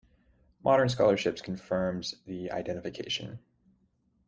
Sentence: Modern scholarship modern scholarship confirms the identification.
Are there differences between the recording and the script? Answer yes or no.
yes